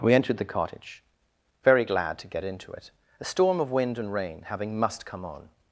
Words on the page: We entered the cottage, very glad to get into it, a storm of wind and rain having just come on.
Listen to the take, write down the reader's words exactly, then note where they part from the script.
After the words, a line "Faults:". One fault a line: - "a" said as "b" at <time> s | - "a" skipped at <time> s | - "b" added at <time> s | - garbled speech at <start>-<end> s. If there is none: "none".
We entered the cottage, very glad to get into it, a storm of wind and rain having must come on.
Faults:
- "just" said as "must" at 4.8 s